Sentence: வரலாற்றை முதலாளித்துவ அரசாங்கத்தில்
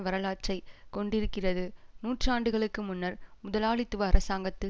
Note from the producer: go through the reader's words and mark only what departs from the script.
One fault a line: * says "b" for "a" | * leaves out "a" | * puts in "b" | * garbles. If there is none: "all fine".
* puts in "கொண்டிருக்கிறது நூற்றாண்டுகளுக்கு முன்னர்"